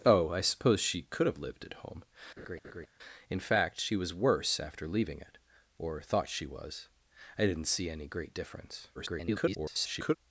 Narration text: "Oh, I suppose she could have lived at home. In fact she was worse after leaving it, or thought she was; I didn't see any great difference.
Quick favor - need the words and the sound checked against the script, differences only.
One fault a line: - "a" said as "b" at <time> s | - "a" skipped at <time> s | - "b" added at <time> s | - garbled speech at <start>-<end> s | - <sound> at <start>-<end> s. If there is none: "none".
- laugh at 2.4-2.9 s
- garbled speech at 8.9-10.2 s